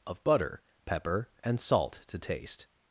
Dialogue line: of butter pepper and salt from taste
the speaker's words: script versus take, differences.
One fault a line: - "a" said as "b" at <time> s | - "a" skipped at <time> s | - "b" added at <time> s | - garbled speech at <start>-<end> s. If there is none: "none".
- "from" said as "to" at 2.1 s